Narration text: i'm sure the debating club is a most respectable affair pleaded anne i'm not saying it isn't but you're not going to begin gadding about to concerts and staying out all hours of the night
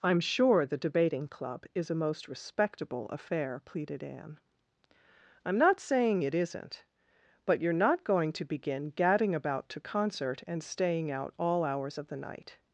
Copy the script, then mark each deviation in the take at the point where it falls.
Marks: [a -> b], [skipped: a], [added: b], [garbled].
i'm sure the debating club is a most respectable affair pleaded anne i'm not saying it isn't but you're not going to begin gadding about to [concerts -> concert] and staying out all hours of the night